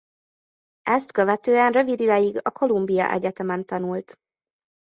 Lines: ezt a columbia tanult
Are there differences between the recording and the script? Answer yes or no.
yes